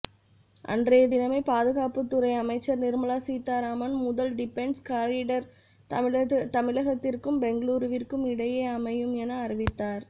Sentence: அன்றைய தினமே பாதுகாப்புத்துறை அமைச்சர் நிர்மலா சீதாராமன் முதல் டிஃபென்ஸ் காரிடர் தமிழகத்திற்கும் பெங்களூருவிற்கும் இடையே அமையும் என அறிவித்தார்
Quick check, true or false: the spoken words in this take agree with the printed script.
true